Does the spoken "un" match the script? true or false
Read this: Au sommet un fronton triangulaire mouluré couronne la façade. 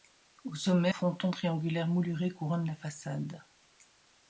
false